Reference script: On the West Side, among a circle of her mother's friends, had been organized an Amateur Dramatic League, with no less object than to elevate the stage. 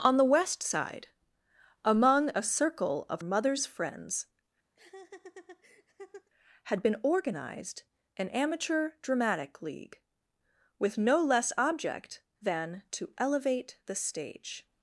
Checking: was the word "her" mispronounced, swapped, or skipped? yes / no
yes